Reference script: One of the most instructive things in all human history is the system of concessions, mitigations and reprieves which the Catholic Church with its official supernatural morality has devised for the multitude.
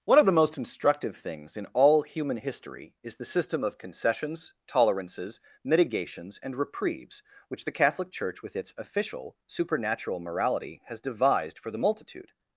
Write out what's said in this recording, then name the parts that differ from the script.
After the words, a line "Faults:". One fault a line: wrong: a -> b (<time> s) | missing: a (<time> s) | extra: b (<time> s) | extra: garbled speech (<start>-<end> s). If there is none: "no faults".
One of the most instructive things in all human history is the system of concessions, tolerances, mitigations and reprieves which the Catholic Church with its official supernatural morality has devised for the multitude.
Faults:
extra: tolerances (4.7 s)